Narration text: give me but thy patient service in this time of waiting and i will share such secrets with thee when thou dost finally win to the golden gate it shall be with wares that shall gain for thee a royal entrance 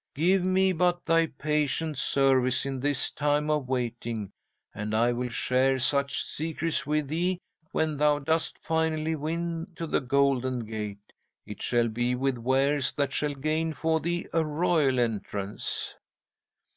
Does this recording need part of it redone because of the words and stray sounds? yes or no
no